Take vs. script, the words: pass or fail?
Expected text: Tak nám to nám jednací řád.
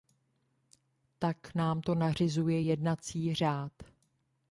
fail